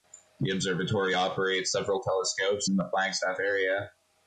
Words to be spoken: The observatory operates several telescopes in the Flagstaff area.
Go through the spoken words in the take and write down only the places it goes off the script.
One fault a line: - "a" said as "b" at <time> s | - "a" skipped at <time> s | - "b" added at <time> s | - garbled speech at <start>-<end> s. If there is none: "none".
none